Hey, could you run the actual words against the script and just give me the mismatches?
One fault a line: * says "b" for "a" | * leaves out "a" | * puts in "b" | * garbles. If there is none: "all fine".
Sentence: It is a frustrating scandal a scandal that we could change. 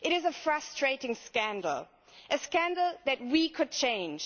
all fine